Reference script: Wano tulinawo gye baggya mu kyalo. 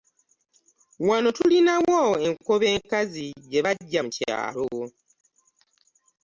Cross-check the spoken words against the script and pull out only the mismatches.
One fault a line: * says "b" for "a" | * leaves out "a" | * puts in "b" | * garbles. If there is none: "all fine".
* puts in "enkobe enkazi"